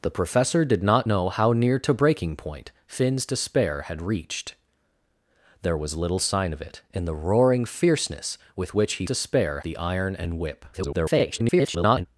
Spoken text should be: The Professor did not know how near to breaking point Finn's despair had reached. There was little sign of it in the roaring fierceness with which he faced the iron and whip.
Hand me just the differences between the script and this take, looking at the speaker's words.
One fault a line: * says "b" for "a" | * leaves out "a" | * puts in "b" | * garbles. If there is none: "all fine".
* says "despair" for "faced"
* garbles